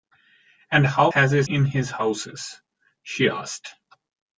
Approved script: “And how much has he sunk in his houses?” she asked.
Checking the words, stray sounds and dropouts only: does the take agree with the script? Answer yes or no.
no